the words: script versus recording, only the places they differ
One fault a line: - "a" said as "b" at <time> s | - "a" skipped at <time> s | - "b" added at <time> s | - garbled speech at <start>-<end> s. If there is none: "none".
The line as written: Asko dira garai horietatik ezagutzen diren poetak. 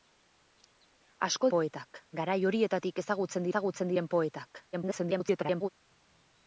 - "dira" said as "poetak" at 1.6 s
- "ezagutzen" added at 3.5 s
- garbled speech at 4.7-5.7 s